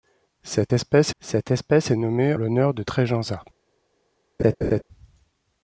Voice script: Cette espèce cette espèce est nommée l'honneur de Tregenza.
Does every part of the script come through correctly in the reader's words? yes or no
yes